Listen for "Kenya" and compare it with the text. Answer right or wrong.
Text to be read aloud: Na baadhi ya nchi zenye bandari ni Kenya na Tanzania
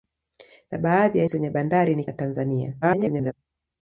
wrong